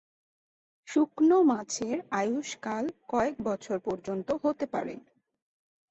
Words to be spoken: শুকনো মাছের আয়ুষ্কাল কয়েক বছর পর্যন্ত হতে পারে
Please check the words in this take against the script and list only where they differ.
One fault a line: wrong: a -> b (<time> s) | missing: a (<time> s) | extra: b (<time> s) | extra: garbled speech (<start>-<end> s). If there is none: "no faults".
no faults